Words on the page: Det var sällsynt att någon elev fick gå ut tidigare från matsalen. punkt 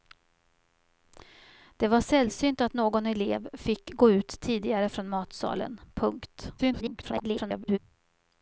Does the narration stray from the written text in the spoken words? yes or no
yes